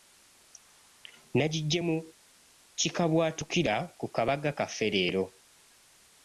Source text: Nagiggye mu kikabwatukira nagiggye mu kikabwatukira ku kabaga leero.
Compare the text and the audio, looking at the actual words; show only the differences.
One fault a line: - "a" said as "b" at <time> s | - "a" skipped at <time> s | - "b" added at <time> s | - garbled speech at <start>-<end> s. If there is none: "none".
- "nagiggye mu kikabwatukira" skipped at 3.8 s
- "kaffe" added at 4.6 s